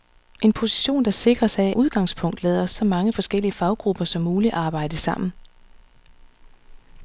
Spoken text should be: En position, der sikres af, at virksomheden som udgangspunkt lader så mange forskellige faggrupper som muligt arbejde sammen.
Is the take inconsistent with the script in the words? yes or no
yes